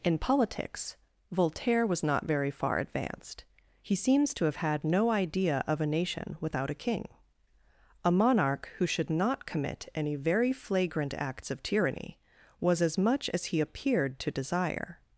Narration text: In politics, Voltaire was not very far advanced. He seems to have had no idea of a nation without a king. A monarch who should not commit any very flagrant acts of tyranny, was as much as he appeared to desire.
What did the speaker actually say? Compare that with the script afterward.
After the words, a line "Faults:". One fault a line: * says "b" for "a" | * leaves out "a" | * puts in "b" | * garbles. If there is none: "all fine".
In politics, Voltaire was not very far advanced. He seems to have had no idea of a nation without a king. A monarch who should not commit any very flagrant acts of tyranny, was as much as he appeared to desire.
Faults:
all fine